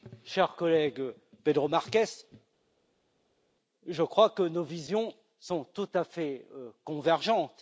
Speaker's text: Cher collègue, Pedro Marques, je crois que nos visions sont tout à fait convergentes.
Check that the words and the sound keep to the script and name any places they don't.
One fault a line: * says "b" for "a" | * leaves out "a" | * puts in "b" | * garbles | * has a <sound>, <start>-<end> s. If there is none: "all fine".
all fine